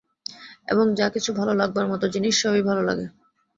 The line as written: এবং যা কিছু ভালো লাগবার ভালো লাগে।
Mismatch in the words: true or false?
true